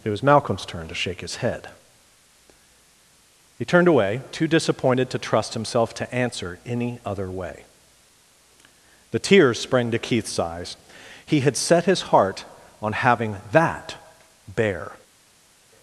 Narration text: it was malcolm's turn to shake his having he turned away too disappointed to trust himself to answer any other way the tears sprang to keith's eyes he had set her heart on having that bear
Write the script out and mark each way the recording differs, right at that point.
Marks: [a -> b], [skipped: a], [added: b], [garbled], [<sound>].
it was malcolm's turn to shake his [having -> head] he turned away too disappointed to trust himself to answer any other way the tears sprang to keith's eyes he had set [her -> his] heart on having that bear